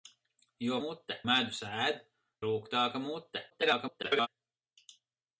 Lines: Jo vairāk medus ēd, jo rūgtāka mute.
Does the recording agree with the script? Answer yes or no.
no